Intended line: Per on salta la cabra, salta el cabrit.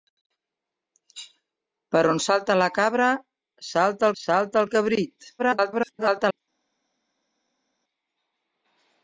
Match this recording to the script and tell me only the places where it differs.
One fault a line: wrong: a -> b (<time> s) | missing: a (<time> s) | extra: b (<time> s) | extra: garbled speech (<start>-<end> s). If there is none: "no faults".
extra: salta (4.2 s)
extra: garbled speech (5.4-6.4 s)